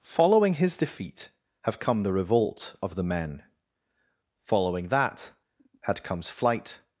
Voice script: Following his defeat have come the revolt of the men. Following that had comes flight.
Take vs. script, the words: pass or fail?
pass